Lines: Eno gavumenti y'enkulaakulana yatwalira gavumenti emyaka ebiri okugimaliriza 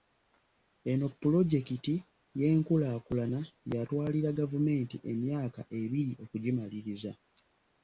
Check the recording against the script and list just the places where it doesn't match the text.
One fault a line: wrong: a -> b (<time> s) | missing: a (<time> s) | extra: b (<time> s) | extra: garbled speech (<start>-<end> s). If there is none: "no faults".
wrong: gavumenti -> pulojekiti (1.2 s)